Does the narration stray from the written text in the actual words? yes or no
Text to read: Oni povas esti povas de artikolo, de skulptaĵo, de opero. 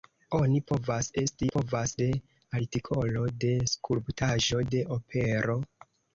no